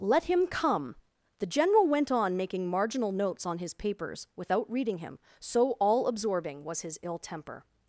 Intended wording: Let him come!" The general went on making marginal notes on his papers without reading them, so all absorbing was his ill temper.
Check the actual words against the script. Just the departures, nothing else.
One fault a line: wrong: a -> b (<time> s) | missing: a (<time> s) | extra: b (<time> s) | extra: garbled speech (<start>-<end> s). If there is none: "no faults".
wrong: them -> him (5.0 s)